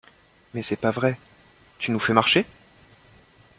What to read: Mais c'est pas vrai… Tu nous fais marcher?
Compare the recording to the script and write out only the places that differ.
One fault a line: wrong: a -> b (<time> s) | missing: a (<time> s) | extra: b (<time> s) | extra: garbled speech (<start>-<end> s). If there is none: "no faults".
no faults